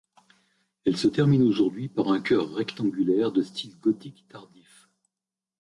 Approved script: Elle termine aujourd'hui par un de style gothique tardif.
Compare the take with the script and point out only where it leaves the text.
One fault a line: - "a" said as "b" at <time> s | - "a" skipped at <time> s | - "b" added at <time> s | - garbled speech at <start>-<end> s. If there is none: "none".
- "se" added at 1.0 s
- "chœur rectangulaire" added at 2.2 s